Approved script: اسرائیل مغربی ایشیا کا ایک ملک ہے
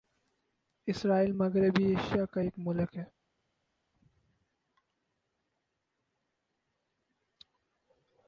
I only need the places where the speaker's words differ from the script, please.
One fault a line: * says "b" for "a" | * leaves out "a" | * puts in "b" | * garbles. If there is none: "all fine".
all fine